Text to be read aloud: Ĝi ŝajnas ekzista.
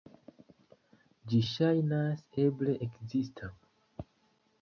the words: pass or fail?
fail